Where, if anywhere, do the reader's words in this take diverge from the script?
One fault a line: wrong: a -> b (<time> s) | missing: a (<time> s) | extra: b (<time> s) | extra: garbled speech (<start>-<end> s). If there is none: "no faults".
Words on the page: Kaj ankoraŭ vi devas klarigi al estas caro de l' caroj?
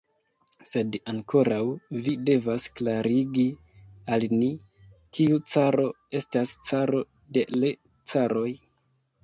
wrong: Kaj -> Sed (0.7 s)
extra: ni kiu caro (4.4 s)